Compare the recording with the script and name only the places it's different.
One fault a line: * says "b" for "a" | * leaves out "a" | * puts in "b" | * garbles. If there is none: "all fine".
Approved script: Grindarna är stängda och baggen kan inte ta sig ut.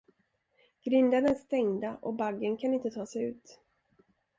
all fine